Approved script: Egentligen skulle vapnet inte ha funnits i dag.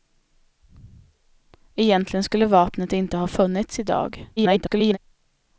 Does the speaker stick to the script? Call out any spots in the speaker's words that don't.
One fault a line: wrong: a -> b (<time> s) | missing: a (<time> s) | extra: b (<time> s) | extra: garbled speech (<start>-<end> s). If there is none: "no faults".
extra: garbled speech (4.4-5.0 s)